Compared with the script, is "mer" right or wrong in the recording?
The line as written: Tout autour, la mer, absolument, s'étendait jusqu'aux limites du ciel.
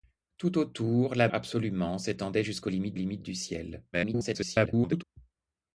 wrong